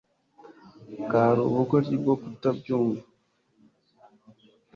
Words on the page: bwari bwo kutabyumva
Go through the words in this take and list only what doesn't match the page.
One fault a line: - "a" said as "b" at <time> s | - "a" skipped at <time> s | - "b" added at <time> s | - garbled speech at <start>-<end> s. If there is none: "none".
- "ubugoryi" added at 1.5 s